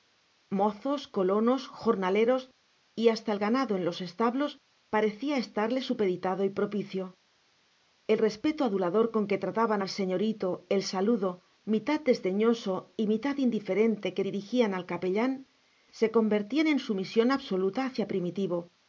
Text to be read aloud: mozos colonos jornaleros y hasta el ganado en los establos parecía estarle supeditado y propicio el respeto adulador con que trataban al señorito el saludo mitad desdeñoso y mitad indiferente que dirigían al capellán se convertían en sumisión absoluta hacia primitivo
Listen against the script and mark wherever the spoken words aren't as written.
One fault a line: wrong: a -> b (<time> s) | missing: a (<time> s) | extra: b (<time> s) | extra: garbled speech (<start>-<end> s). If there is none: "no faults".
no faults